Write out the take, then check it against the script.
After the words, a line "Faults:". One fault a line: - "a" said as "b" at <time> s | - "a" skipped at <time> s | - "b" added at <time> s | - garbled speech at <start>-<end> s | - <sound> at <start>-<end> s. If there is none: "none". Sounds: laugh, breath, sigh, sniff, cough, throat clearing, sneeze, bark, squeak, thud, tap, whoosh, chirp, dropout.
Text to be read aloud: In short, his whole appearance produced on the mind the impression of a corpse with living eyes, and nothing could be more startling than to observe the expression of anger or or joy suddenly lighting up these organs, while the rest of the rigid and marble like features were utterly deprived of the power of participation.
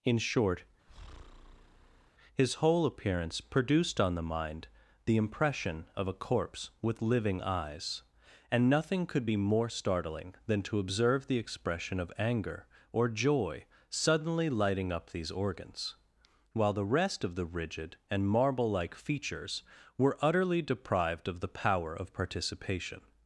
In short, his whole appearance produced on the mind the impression of a corpse with living eyes, and nothing could be more startling than to observe the expression of anger or joy suddenly lighting up these organs, while the rest of the rigid and marble like features were utterly deprived of the power of participation.
Faults:
- breath at 0.9-2.1 s
- "or" skipped at 13.1 s